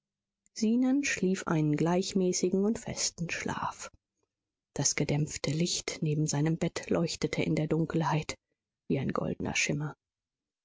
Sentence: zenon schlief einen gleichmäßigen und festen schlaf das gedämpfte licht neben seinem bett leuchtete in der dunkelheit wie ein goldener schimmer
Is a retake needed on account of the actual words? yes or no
no